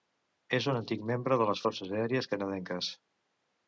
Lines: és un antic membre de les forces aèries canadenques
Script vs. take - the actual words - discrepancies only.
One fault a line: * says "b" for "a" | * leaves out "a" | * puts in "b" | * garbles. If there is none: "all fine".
all fine